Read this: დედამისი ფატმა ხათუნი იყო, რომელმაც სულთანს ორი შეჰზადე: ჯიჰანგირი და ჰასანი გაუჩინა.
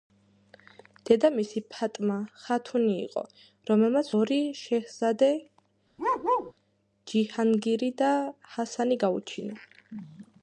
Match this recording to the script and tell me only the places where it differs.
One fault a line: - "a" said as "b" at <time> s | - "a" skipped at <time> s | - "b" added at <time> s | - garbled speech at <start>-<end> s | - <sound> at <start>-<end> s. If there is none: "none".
- "სულთანს" skipped at 4.1 s
- bark at 6.0-6.5 s